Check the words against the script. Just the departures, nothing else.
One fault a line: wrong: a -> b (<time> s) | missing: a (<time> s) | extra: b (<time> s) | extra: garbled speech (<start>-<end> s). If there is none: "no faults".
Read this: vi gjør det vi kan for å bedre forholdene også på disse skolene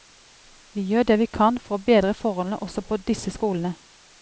no faults